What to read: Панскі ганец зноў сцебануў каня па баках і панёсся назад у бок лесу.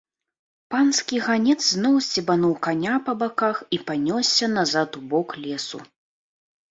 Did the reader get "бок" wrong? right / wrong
right